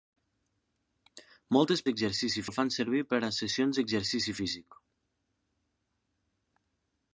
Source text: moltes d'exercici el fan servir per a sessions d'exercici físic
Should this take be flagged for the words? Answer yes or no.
no